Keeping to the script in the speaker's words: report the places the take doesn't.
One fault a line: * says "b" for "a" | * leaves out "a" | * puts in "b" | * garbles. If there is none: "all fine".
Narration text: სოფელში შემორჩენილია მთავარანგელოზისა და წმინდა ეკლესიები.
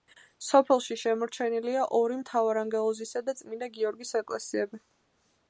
* puts in "ორი"
* puts in "გიორგის"